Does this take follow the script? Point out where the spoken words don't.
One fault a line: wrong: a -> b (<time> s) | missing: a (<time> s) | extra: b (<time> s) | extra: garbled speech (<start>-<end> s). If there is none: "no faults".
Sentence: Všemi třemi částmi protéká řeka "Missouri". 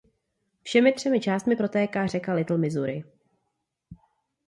extra: Little (2.3 s)